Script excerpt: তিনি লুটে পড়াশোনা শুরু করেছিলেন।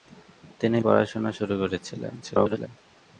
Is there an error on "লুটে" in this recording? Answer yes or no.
yes